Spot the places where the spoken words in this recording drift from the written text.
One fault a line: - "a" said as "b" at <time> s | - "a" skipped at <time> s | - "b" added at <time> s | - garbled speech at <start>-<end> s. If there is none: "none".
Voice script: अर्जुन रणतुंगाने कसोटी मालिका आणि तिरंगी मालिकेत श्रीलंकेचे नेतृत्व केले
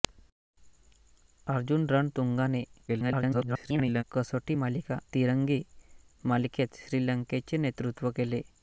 - garbled speech at 2.9-4.0 s
- "आणि" skipped at 5.0 s